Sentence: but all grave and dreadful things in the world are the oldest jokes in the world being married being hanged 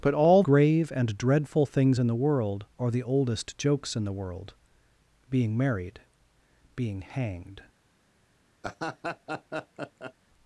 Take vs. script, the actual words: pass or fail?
pass